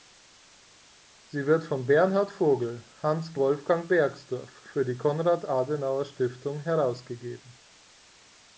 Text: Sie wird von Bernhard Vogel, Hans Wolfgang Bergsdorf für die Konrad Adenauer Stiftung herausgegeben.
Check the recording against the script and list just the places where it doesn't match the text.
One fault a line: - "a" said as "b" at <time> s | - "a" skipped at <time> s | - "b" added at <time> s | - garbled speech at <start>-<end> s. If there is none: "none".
none